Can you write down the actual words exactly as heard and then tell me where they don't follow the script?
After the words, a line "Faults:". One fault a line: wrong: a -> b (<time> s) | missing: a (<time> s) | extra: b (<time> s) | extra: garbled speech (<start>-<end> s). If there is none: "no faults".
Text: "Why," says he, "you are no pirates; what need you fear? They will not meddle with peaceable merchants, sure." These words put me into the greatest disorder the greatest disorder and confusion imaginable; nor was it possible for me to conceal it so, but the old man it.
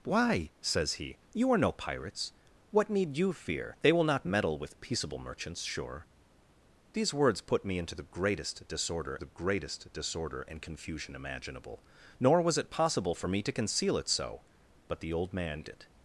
"Why," says he, "you are no pirates; what need you fear? They will not meddle with peaceable merchants, sure." These words put me into the greatest disorder the greatest disorder and confusion imaginable; nor was it possible for me to conceal it so, but the old man it.
Faults:
no faults